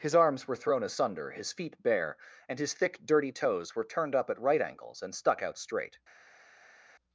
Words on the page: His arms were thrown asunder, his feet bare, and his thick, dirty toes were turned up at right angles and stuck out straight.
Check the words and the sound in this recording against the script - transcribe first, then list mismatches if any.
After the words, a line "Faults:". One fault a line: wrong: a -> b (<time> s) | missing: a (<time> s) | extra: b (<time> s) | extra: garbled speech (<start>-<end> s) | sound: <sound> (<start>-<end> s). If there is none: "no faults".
His arms were thrown asunder, his feet bare, and his thick, dirty toes were turned up at right angles and stuck out straight.
Faults:
no faults